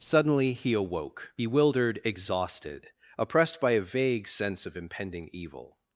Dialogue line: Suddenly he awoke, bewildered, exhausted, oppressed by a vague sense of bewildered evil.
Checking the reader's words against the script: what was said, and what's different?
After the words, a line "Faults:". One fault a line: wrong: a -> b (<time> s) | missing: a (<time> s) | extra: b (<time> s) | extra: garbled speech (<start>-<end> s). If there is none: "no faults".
Suddenly he awoke, bewildered, exhausted, oppressed by a vague sense of impending evil.
Faults:
wrong: bewildered -> impending (4.8 s)